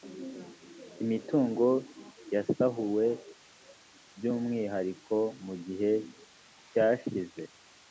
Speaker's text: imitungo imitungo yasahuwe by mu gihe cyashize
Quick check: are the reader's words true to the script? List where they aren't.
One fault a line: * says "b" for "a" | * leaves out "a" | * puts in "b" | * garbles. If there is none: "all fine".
* leaves out "imitungo"
* puts in "umwihariko"